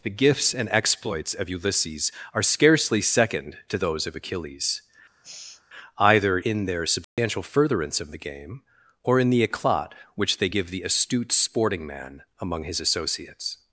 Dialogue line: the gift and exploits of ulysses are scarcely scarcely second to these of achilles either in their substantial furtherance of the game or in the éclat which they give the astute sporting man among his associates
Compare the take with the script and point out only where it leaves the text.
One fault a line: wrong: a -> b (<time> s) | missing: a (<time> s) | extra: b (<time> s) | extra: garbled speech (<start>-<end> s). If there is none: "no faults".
wrong: gift -> gifts (0.1 s)
missing: scarcely (3.0 s)
wrong: these -> those (3.8 s)